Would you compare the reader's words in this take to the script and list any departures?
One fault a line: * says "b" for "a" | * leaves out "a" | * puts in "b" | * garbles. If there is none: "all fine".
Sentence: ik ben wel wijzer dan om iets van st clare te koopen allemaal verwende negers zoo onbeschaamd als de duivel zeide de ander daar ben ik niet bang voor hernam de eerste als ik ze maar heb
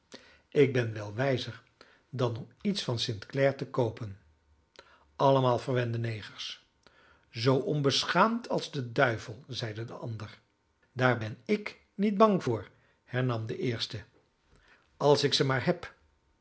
all fine